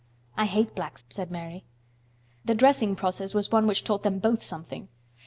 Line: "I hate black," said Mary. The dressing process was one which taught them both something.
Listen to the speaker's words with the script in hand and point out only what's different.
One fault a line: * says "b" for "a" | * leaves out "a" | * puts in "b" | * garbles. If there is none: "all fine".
all fine